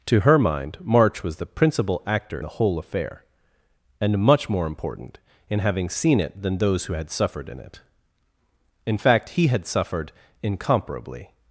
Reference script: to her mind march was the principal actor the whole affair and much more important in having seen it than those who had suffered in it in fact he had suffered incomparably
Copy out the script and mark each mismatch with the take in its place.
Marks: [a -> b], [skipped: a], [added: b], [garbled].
to her mind march was the principal actor the whole affair and much more important in having seen it than those who had suffered in it in fact he had suffered incomparably